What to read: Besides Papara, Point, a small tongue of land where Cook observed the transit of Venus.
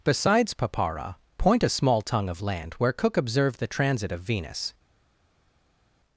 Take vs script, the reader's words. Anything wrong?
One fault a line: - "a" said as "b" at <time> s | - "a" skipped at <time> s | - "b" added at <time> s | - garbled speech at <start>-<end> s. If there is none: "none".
none